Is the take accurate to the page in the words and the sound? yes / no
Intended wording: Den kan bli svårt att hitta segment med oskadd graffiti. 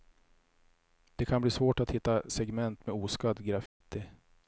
no